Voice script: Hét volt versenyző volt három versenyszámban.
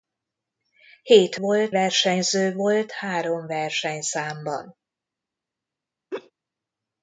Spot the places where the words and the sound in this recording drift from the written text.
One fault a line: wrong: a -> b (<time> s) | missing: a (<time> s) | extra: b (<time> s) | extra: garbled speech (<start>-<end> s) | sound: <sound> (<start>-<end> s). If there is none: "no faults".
sound: laugh (6.1-6.3 s)